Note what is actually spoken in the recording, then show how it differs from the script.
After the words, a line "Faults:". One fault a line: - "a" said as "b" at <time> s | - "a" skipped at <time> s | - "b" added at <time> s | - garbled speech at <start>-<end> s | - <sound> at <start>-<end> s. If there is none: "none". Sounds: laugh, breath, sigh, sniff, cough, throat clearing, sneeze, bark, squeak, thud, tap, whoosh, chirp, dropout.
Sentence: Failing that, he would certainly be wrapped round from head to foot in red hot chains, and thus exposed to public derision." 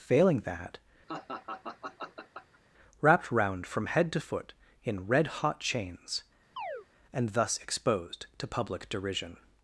Failing that, wrapped round from head to foot in red hot chains, and thus exposed to public derision."
Faults:
- "he would certainly be" skipped at 0.8 s
- laugh at 1.1-2.6 s
- chirp at 6.6-6.9 s